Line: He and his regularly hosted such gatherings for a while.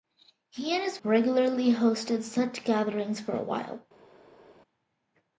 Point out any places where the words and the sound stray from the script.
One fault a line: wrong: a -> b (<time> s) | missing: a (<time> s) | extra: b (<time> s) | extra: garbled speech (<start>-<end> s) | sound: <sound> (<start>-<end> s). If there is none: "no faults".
no faults